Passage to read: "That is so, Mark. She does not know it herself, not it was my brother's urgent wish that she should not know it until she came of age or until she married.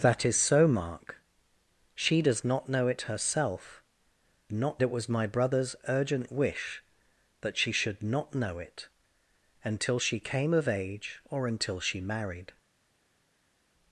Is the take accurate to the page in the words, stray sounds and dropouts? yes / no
yes